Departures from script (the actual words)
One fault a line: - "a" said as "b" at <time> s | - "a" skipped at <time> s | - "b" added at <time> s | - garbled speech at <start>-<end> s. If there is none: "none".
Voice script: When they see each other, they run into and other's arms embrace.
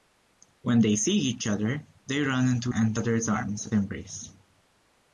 none